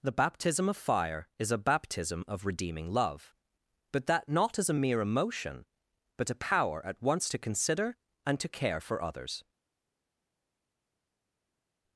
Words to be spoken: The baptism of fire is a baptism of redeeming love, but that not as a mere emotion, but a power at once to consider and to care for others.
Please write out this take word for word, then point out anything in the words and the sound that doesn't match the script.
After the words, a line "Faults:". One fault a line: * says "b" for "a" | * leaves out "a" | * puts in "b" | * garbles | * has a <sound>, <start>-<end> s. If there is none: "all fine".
The baptism of fire is a baptism of redeeming love, but that not as a mere emotion, but a power at once to consider and to care for others.
Faults:
all fine